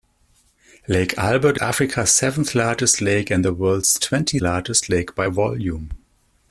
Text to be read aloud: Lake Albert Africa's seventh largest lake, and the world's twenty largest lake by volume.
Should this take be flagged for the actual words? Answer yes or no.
no